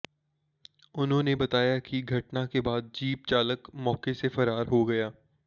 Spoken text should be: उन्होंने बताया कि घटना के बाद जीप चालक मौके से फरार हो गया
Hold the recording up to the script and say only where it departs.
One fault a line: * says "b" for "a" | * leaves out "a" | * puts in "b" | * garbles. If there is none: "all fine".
all fine